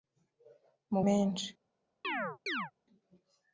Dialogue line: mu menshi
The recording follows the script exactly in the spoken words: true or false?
true